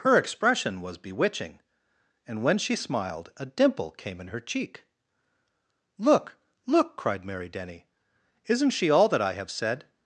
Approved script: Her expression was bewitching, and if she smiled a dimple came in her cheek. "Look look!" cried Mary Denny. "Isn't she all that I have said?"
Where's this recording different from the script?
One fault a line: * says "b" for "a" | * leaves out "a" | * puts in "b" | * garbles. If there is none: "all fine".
* says "when" for "if"